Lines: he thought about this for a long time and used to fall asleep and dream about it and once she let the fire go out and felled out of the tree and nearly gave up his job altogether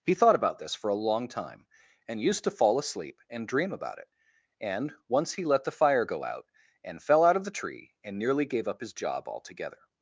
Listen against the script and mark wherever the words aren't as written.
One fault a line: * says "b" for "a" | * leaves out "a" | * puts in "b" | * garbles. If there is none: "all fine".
* says "he" for "she"
* says "fell" for "felled"